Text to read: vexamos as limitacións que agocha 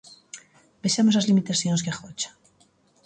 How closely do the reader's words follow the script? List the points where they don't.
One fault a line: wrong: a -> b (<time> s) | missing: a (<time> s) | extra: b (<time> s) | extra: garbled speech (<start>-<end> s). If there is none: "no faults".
no faults